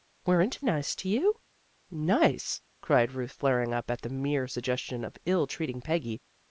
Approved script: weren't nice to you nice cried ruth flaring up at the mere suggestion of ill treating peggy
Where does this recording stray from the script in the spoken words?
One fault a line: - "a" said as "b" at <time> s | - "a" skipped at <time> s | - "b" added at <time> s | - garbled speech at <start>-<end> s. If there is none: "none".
none